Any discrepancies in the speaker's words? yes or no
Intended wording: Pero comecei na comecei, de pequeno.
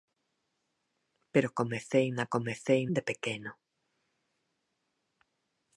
no